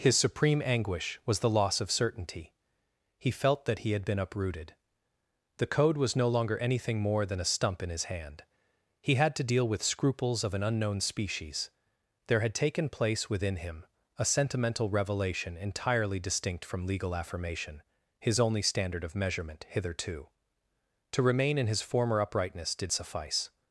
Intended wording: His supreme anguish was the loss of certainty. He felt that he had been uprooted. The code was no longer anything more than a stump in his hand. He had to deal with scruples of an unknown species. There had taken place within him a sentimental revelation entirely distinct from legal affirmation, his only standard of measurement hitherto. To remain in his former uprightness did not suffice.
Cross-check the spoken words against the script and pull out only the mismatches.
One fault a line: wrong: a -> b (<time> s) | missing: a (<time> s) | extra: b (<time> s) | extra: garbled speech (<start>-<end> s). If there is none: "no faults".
missing: not (22.9 s)